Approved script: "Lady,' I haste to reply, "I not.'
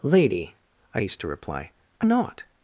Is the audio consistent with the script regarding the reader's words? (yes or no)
yes